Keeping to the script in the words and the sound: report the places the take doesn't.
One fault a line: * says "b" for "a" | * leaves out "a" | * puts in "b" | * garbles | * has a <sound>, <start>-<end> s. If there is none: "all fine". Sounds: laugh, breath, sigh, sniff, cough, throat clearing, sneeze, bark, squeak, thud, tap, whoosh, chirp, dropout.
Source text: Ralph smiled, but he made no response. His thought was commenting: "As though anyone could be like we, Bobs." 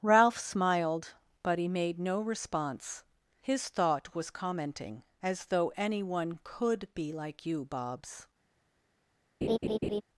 * says "you" for "we"
* has a laugh, 9.4-10.0 s